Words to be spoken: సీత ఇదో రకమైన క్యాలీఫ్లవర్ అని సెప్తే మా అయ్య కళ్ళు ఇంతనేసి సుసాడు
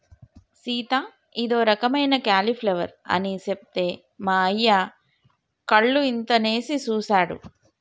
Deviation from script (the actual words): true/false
false